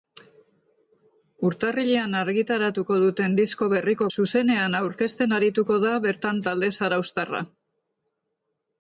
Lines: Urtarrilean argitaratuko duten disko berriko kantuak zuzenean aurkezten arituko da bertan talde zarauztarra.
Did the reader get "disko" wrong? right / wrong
right